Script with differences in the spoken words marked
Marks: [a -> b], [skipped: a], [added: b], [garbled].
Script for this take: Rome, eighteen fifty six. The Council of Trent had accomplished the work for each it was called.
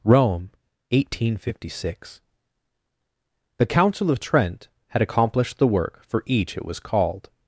Rome, eighteen fifty six. The Council of Trent had accomplished the work for each it was called.